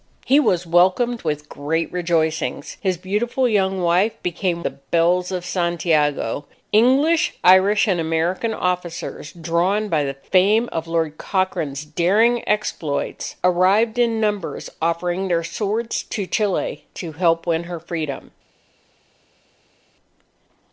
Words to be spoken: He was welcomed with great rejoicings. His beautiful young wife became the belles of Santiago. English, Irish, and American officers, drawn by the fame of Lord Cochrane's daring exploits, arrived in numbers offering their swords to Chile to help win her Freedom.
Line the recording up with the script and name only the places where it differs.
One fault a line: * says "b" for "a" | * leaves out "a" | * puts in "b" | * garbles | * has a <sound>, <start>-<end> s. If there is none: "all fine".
all fine